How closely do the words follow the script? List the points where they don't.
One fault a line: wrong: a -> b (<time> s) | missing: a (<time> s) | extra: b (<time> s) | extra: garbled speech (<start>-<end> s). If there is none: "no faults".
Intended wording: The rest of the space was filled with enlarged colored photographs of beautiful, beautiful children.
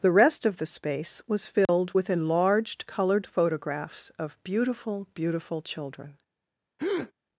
no faults